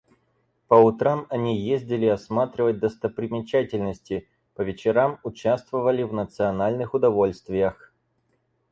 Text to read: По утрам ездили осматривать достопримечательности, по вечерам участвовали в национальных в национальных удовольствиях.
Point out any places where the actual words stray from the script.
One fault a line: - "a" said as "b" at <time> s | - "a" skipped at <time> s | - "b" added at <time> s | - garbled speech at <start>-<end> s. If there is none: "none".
- "они" added at 1.3 s
- "в национальных" skipped at 7.0 s